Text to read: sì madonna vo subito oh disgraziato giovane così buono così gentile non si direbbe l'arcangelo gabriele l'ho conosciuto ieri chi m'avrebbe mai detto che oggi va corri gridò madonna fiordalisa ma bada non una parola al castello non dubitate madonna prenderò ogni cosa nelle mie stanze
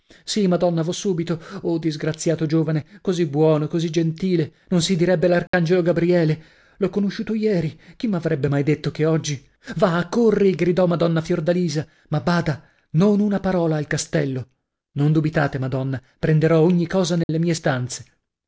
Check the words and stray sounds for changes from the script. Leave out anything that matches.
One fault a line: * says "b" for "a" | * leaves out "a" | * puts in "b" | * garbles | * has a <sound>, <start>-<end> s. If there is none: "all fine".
* has a dropout, 5.5-5.5 s
* has a dropout, 17.2-17.3 s